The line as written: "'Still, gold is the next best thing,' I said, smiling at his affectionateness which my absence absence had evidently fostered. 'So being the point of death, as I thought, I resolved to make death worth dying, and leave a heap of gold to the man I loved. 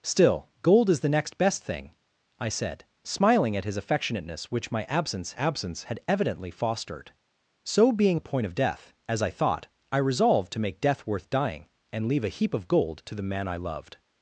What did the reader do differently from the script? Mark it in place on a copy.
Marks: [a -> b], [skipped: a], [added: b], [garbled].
"'Still, gold is the next best thing,' I said, smiling at his affectionateness which my absence absence had evidently fostered. 'So being the point of death, as I thought, I resolved to make death worth dying, and leave a heap of gold to the man I loved.